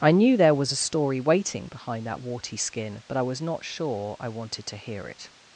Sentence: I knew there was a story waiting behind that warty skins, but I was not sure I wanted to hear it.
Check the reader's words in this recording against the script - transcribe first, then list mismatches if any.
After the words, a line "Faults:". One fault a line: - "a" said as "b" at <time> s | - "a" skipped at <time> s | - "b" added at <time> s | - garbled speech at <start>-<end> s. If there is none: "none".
I knew there was a story waiting behind that warty skin, but I was not sure I wanted to hear it.
Faults:
- "skins" said as "skin" at 2.6 s